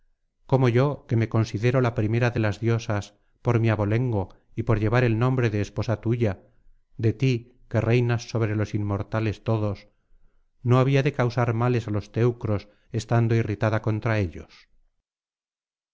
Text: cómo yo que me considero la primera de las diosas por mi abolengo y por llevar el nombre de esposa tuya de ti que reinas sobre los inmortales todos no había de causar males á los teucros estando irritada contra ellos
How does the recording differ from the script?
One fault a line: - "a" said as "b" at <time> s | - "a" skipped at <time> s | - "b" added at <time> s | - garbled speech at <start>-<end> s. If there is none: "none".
none